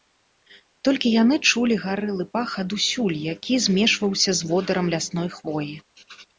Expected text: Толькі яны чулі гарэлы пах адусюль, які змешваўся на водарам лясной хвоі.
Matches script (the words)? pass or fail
fail